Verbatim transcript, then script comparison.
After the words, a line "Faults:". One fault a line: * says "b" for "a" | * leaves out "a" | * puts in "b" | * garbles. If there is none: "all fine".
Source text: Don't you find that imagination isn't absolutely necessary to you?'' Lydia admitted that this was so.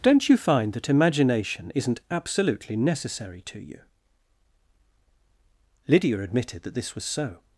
Don't you find that imagination isn't absolutely necessary to you?'' Lydia admitted that this was so.
Faults:
all fine